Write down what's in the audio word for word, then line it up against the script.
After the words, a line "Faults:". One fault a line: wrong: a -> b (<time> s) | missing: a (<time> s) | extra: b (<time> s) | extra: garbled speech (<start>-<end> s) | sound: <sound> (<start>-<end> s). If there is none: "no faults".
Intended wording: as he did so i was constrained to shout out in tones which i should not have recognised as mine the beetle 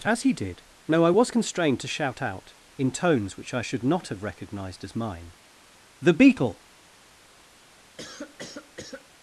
as he did no i was constrained to shout out in tones which i should not have recognised as mine the beetle
Faults:
wrong: so -> no (0.9 s)
sound: cough (8.0-9.1 s)